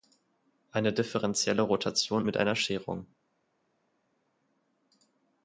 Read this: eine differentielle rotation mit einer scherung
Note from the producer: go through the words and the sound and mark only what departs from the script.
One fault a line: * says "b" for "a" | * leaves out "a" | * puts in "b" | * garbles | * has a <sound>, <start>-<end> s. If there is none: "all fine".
all fine